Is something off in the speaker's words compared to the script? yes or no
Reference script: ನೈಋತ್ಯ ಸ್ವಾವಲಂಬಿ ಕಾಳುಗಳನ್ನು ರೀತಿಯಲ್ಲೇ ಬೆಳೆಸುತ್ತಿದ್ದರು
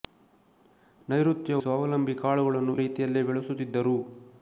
no